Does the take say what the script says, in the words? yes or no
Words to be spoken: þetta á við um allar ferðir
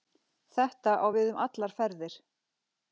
yes